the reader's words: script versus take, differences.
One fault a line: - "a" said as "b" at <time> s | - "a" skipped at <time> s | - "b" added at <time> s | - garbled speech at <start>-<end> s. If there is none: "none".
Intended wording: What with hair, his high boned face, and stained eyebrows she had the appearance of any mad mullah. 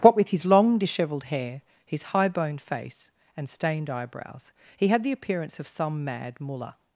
- "his long dishevelled" added at 0.3 s
- "she" said as "he" at 4.8 s
- "any" said as "some" at 5.7 s